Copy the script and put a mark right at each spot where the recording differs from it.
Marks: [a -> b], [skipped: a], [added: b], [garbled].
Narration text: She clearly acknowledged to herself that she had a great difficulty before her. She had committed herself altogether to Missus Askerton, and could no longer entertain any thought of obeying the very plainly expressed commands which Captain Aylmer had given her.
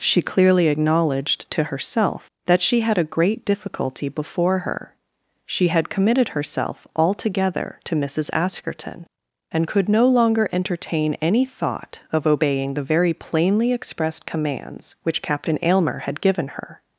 She clearly acknowledged to herself that she had a great difficulty before her. She had committed herself altogether to Missus Askerton, and could no longer entertain any thought of obeying the very plainly expressed commands which Captain Aylmer had given her.